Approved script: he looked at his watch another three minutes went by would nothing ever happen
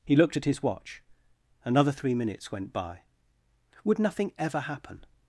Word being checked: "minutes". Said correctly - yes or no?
yes